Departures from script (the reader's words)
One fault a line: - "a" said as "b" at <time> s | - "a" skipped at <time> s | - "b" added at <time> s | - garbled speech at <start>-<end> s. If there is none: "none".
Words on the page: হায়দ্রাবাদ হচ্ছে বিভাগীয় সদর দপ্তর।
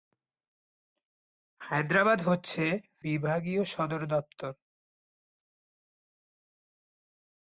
none